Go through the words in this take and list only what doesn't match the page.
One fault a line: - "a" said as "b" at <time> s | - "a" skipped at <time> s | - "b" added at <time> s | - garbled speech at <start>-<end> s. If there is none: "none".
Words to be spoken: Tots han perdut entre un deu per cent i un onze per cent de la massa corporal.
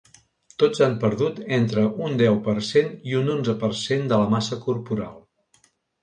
none